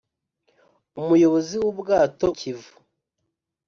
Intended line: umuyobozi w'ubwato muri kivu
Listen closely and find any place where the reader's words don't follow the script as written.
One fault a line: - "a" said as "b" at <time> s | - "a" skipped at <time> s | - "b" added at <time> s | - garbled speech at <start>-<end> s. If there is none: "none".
- "muri" skipped at 2.3 s